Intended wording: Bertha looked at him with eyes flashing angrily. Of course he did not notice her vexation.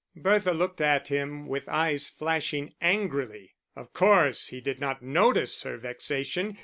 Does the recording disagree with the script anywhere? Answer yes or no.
no